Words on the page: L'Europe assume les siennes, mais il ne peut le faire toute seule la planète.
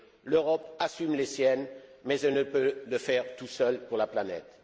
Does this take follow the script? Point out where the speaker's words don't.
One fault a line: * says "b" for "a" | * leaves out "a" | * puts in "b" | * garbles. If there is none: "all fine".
* says "elle" for "il"
* puts in "pour"